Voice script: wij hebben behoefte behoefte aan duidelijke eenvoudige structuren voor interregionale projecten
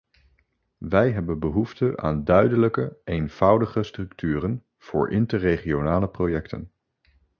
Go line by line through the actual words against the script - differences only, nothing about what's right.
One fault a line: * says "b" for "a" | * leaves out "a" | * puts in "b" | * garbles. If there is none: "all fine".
* leaves out "behoefte"